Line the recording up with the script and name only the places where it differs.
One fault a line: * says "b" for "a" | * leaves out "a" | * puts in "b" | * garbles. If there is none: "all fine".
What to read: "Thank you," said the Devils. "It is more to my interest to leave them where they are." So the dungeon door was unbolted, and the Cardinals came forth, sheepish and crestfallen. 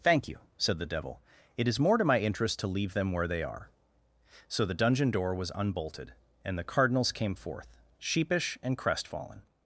* says "Devil" for "Devils"